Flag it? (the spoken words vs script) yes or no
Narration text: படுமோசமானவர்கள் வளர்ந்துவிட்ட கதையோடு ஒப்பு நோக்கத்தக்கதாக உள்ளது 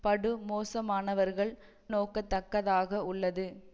yes